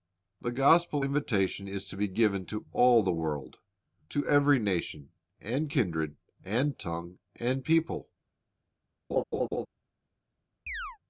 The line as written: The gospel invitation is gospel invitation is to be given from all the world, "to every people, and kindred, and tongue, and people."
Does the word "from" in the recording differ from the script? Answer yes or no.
yes